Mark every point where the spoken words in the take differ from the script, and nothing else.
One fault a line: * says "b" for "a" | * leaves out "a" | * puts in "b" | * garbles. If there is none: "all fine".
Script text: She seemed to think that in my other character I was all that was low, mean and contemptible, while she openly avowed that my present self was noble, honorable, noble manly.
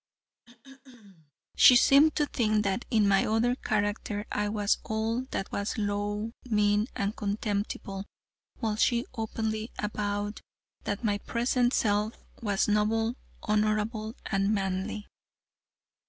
* says "and" for "noble"